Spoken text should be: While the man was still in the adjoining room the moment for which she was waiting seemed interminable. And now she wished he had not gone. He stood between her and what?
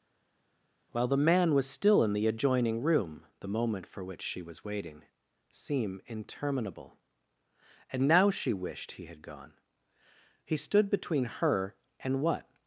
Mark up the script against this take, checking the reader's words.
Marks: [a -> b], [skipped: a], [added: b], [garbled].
While the man was still in the adjoining room the moment for which she was waiting [seemed -> seem] interminable. And now she wished he had [skipped: not] gone. He stood between her and what?